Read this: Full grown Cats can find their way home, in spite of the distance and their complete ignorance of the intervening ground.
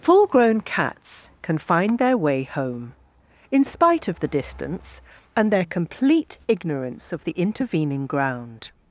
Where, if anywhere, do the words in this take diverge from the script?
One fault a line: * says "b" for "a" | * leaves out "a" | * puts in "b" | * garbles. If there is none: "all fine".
all fine